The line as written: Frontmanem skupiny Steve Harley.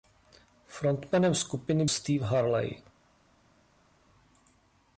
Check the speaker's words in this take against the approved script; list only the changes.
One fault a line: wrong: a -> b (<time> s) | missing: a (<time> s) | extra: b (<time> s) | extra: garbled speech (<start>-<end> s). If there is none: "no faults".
no faults